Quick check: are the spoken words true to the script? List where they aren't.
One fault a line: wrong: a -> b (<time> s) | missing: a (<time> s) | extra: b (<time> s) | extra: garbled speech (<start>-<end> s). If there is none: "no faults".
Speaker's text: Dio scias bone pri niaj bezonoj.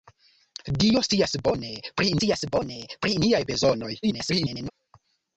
extra: scias bone pri (2.2 s)
extra: garbled speech (4.0-4.7 s)